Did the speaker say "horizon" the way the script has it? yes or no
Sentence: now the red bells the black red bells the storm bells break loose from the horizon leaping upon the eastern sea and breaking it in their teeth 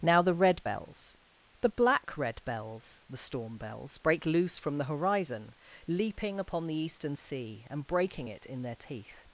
yes